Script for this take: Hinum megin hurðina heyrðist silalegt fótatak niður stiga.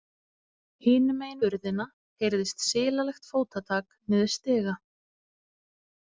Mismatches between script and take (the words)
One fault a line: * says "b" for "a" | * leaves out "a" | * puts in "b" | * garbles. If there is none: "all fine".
all fine